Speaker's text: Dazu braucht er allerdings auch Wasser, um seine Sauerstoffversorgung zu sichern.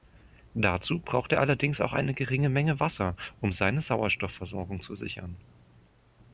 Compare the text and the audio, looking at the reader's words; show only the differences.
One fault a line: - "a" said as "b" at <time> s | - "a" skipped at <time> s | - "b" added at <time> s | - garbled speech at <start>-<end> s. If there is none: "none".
- "eine geringe Menge" added at 1.9 s